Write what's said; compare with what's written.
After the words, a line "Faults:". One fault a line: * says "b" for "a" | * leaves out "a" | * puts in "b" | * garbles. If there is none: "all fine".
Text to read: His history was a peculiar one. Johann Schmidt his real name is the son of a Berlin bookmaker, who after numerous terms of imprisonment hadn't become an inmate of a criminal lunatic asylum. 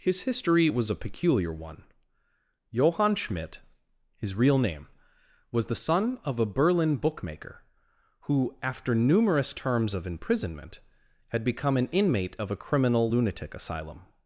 His history was a peculiar one. Johann Schmidt his real name was the son of a Berlin bookmaker, who after numerous terms of imprisonment had become an inmate of a criminal lunatic asylum.
Faults:
* says "was" for "is"
* says "had" for "hadn't"